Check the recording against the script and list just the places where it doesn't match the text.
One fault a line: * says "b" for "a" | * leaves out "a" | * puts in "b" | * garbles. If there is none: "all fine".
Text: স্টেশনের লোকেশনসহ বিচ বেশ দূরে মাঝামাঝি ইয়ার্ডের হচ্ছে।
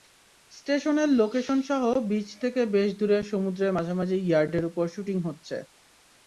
* puts in "থেকে"
* puts in "সমুদ্রের"
* puts in "ওপর শুটিং"